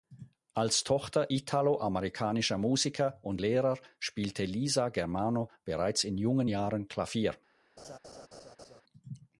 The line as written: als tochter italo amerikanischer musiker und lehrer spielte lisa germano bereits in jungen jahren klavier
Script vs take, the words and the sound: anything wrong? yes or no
yes